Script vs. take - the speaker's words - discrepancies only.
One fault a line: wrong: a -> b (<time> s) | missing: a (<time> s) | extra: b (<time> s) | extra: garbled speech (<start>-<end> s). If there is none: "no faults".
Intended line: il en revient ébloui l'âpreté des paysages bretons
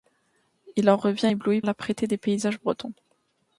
no faults